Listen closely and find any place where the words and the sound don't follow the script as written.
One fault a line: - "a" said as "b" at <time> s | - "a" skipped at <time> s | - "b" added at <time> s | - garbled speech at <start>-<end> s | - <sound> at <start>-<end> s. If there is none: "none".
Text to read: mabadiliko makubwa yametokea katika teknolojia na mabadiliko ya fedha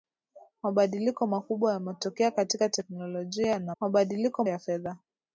none